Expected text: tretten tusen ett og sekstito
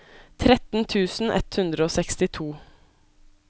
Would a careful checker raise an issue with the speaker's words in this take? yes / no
yes